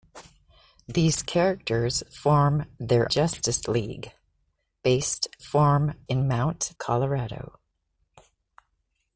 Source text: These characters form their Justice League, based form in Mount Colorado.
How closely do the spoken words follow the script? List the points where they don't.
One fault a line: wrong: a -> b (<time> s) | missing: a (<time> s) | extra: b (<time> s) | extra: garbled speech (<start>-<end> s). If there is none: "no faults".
no faults